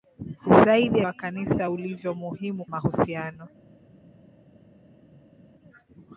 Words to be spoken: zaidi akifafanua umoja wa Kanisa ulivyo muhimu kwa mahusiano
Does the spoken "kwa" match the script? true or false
false